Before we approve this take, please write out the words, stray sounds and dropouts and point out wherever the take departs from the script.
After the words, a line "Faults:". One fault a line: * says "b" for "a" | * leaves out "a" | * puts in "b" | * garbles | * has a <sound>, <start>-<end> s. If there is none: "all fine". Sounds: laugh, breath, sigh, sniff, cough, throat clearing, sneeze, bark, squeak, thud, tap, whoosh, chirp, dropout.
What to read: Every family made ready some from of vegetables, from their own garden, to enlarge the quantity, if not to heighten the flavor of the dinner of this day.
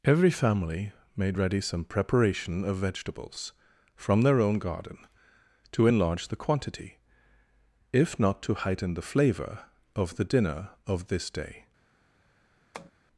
Every family made ready some preparation of vegetables, from their own garden, to enlarge the quantity, if not to heighten the flavor of the dinner of this day.
Faults:
* says "preparation" for "from"
* has a tap, 12.7-12.9 s